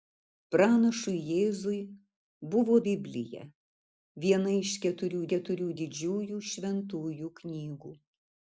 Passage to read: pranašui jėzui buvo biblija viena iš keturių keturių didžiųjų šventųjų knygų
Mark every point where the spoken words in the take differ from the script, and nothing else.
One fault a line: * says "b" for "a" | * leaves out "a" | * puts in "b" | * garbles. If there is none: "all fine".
all fine